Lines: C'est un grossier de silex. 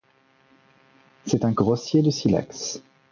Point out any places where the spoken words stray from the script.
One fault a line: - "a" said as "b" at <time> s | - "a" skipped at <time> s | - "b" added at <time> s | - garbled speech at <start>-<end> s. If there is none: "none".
none